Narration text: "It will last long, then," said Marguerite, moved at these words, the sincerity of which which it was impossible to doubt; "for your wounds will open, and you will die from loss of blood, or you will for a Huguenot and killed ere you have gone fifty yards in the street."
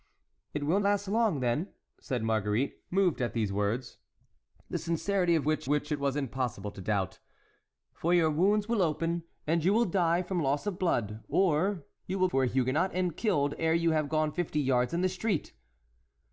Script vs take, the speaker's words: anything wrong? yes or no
no